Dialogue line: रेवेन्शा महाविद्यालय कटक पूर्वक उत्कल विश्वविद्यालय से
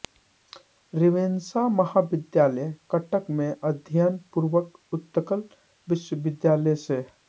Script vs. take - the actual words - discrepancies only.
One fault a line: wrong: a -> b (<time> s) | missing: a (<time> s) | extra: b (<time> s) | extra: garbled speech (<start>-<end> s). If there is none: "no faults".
extra: में अध्ययन (3.3 s)